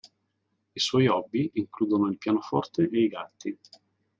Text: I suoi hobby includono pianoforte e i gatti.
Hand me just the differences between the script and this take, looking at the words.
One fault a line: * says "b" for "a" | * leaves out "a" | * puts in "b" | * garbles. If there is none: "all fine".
* puts in "il"